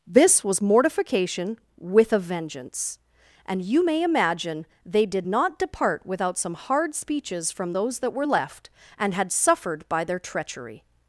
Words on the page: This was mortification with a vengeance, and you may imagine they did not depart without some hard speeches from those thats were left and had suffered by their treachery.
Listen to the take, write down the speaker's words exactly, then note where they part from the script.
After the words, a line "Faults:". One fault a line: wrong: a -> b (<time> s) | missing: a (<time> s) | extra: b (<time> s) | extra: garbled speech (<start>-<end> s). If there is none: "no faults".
This was mortification with a vengeance, and you may imagine they did not depart without some hard speeches from those that were left and had suffered by their treachery.
Faults:
wrong: thats -> that (8.0 s)